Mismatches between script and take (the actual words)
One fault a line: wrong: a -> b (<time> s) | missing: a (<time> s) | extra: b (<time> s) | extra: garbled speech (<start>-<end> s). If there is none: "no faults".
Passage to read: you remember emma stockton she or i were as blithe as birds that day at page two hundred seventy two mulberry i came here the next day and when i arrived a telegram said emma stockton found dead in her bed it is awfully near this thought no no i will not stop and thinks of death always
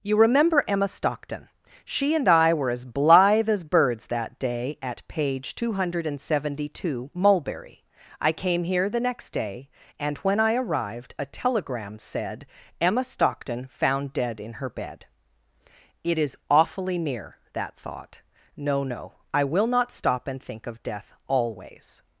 wrong: or -> and (2.1 s)
wrong: this -> that (17.5 s)
wrong: thinks -> think (20.4 s)